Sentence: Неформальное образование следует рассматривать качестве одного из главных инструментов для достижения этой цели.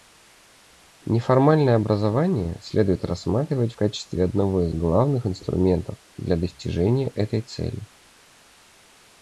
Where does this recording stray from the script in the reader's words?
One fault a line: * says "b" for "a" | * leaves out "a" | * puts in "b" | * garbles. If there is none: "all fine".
all fine